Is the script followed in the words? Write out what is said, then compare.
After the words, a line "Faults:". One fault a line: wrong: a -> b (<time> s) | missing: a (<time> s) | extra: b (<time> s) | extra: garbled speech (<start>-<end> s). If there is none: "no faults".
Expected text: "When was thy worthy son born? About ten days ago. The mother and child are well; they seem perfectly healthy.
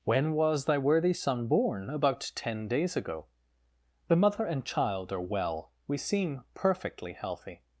"When was thy worthy son born? About ten days ago. The mother and child are well; we seem perfectly healthy.
Faults:
wrong: they -> we (5.9 s)